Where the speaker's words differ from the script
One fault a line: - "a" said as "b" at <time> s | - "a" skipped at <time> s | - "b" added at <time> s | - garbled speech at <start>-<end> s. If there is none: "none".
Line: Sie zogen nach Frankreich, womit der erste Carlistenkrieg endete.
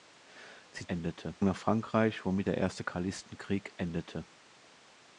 - "zogen" said as "endete" at 0.9 s